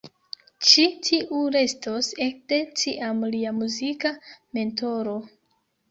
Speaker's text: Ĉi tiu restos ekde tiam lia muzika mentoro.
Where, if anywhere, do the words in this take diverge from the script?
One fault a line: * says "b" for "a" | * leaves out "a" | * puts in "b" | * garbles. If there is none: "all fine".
all fine